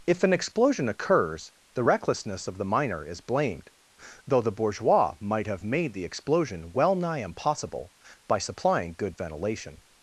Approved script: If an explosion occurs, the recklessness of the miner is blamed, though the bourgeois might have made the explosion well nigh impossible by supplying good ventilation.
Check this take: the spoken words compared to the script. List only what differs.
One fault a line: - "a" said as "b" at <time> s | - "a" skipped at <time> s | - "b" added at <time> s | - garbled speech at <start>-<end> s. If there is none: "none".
none